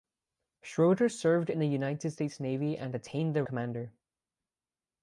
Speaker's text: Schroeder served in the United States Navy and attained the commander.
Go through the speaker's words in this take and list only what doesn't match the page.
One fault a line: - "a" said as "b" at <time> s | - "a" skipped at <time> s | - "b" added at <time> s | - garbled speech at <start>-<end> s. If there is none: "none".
none